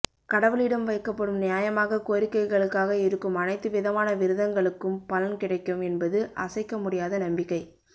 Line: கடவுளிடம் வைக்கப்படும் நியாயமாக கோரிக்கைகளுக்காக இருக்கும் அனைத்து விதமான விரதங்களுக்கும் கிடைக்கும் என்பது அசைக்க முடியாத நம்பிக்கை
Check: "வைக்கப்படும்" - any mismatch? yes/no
no